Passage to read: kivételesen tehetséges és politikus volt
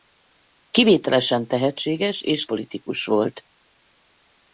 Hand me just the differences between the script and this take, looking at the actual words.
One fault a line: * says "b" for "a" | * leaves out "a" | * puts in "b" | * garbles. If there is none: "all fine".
all fine